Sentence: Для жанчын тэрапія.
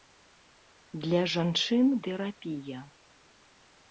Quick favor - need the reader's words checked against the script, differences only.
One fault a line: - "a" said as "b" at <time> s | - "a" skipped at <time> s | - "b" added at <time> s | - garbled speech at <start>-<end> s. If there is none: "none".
none